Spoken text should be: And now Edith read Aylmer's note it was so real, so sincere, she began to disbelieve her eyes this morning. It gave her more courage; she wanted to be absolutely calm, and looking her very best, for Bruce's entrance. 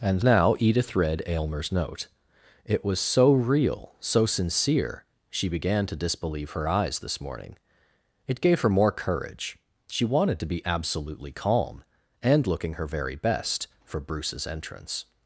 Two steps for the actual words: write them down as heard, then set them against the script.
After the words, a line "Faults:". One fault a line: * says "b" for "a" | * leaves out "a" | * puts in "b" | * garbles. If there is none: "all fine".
And now Edith read Aylmer's note it was so real, so sincere, she began to disbelieve her eyes this morning. It gave her more courage; she wanted to be absolutely calm, and looking her very best, for Bruce's entrance.
Faults:
all fine